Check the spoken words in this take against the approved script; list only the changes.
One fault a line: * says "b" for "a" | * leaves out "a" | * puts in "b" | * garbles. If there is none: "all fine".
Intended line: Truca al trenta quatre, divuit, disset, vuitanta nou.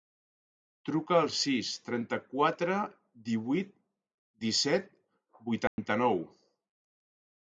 * puts in "sis"